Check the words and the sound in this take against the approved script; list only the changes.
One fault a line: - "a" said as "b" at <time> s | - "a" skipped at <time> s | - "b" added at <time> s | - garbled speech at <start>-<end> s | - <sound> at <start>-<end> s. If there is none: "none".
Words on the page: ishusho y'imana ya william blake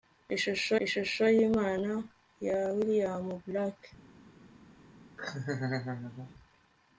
- "ishusho" added at 0.8 s
- laugh at 5.2-6.3 s